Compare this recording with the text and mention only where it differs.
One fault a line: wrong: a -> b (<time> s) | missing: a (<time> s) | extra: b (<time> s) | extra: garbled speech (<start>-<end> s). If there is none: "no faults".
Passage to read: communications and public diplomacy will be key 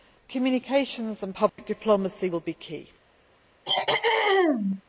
no faults